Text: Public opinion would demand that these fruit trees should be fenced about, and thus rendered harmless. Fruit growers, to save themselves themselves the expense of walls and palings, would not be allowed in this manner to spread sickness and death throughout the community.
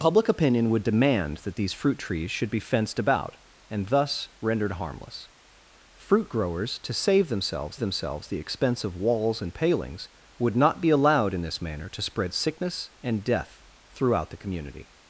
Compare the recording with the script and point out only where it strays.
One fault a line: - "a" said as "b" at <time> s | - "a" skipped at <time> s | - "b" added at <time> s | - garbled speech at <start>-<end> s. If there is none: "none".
none